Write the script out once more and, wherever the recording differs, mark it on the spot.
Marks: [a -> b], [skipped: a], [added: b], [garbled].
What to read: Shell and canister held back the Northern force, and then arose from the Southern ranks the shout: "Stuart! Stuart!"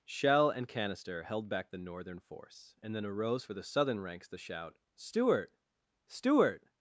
Shell and canister held back the Northern force, and then arose [from -> for] the Southern ranks the shout: "Stuart! Stuart!"